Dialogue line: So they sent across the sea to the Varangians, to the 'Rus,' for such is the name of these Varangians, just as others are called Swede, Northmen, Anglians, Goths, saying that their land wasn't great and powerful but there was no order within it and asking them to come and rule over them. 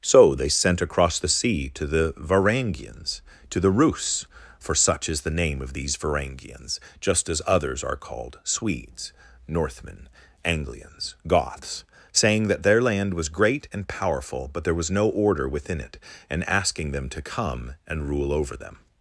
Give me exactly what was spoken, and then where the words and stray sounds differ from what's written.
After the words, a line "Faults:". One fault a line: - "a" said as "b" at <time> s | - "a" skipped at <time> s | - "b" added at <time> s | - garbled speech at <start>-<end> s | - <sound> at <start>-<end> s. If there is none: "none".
So they sent across the sea to the Varangians, to the 'Rus,' for such is the name of these Varangians, just as others are called Swedes, Northmen, Anglians, Goths, saying that their land was great and powerful but there was no order within it and asking them to come and rule over them.
Faults:
- "Swede" said as "Swedes" at 8.4 s
- "wasn't" said as "was" at 13.1 s